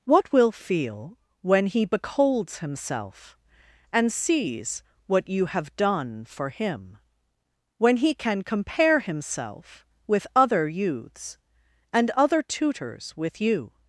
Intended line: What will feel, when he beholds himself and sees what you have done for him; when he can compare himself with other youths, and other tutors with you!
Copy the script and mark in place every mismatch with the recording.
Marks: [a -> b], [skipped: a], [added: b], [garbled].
What will feel, when he beholds himself and sees what you have done for him; when he can compare himself with other youths, and other tutors with you!